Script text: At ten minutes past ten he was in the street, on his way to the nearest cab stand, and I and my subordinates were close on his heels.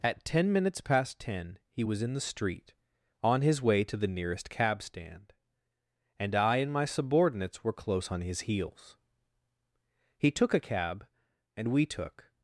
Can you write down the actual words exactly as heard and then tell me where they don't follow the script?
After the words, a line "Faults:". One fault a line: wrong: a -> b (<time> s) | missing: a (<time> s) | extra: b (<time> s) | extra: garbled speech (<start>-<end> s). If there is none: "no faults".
At ten minutes past ten he was in the street, on his way to the nearest cab stand, and I and my subordinates were close on his heels. He took a cab and we took
Faults:
extra: He took a cab and we took (10.2 s)